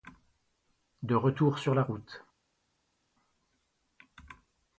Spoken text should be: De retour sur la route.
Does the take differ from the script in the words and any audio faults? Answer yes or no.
no